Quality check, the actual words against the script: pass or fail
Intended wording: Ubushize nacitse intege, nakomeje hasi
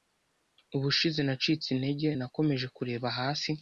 fail